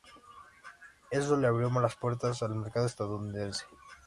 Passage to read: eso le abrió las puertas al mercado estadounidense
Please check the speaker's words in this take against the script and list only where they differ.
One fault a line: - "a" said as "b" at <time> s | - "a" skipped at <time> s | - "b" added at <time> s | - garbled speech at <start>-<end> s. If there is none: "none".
none